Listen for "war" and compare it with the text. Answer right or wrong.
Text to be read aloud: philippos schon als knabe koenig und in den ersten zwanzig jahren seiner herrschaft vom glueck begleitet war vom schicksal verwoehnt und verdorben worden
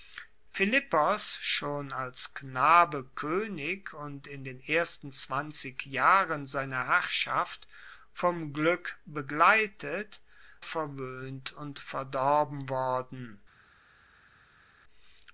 wrong